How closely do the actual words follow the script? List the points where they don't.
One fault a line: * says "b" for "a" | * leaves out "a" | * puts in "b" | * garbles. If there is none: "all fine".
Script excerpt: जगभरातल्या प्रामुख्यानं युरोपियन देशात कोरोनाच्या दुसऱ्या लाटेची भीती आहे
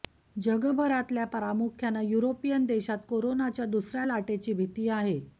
all fine